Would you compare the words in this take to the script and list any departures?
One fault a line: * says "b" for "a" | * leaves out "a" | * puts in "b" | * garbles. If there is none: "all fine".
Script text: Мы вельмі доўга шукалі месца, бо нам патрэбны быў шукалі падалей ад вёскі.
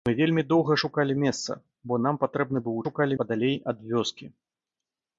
all fine